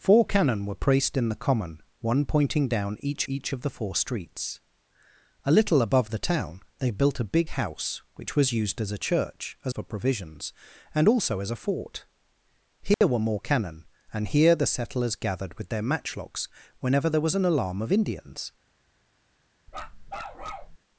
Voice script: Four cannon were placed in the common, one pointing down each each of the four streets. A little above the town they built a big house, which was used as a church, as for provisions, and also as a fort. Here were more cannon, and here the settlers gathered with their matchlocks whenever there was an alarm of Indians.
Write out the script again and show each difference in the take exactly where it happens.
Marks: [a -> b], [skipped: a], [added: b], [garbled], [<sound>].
Four cannon were placed in the common, one pointing down each each of the four streets. A little above the town they built a big house, which was used as a church, as for provisions, and also as a fort. Here [dropout] were more cannon, and here the settlers gathered with their matchlocks whenever there was an alarm of Indians. [bark]